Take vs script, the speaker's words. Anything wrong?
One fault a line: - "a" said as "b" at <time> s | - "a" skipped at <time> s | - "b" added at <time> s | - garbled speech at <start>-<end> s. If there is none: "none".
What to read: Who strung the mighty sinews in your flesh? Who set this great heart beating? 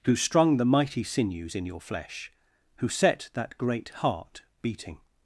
- "this" said as "that" at 3.3 s